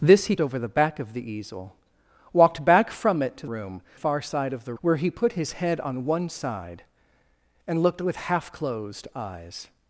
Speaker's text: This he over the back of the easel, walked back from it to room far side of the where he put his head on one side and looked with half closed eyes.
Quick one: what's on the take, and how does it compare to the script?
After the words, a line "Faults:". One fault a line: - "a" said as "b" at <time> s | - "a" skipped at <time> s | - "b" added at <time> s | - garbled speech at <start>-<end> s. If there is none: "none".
This he over the back of the easel, walked back from it to room far side of the where he put his head on one side and looked with half closed eyes.
Faults:
none